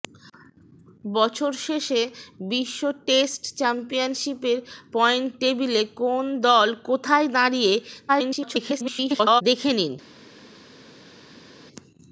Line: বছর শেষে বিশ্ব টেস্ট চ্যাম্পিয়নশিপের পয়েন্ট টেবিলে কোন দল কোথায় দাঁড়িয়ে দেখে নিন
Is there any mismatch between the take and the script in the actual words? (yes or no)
yes